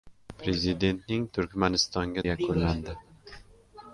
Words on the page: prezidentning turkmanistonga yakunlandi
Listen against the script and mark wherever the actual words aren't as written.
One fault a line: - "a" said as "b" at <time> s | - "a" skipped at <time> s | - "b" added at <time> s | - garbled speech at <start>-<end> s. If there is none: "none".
none